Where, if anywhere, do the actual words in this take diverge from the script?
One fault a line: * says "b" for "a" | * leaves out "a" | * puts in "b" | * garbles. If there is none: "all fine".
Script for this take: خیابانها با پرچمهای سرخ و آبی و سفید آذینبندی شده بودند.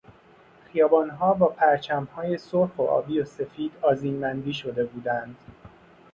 all fine